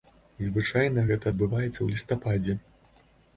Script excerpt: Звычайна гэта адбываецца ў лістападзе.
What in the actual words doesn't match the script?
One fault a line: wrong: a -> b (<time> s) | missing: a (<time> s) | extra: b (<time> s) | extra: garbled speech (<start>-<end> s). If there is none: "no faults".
no faults